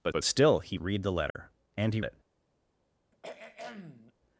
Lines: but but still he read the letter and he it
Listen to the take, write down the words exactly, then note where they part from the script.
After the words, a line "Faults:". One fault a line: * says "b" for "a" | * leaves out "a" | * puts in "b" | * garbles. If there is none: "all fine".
but but still he read the letter and he it
Faults:
all fine